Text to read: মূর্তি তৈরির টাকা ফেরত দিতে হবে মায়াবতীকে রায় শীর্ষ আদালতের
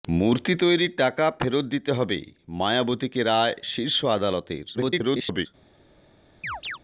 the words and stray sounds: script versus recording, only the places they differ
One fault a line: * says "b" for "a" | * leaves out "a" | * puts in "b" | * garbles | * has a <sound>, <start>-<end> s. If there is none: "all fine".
* garbles
* has a chirp, 6.4-6.8 s